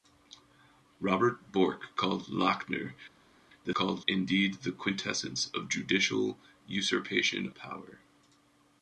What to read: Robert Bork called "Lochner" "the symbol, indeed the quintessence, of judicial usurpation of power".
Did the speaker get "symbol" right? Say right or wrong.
wrong